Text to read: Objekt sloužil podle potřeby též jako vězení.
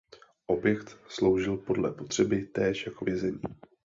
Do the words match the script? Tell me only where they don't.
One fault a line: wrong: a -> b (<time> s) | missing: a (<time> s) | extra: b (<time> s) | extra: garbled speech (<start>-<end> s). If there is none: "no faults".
no faults